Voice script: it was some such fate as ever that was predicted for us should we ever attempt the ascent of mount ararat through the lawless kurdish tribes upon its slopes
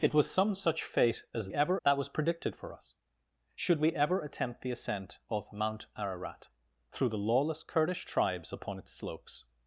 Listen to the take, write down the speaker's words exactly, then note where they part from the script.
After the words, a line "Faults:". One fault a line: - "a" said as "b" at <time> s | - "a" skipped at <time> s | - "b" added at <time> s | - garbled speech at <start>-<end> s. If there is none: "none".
it was some such fate as ever that was predicted for us should we ever attempt the ascent of mount ararat through the lawless kurdish tribes upon its slopes
Faults:
none